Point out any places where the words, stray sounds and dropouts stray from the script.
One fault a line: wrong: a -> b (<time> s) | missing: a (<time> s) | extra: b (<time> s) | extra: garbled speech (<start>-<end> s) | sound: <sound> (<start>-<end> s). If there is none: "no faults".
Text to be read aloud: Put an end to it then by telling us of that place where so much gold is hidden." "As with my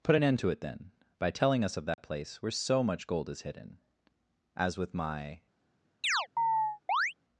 sound: dropout (1.9-2.0 s)
sound: chirp (6.0-7.1 s)